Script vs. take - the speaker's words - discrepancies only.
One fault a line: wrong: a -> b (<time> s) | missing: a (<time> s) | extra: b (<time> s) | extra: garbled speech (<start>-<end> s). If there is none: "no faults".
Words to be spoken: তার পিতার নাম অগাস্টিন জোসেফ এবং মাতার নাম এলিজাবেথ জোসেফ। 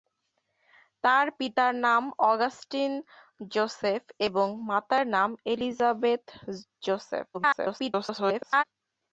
extra: garbled speech (7.3-8.6 s)